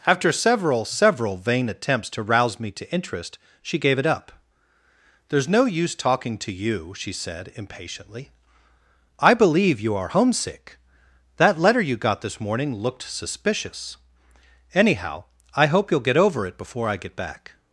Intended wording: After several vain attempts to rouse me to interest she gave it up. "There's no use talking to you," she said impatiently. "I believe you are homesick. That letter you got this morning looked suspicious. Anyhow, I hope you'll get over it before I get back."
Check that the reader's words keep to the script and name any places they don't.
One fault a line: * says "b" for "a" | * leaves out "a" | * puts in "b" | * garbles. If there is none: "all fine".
* puts in "several"